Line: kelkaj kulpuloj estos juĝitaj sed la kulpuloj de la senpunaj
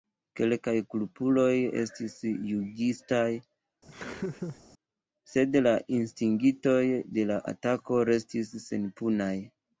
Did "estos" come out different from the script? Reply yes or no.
yes